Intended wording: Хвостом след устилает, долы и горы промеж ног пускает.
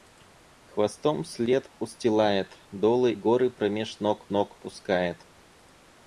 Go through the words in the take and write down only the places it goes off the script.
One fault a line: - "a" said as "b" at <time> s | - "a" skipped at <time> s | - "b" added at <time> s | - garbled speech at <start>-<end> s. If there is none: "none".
- "и" skipped at 3.1 s
- "ног" added at 4.3 s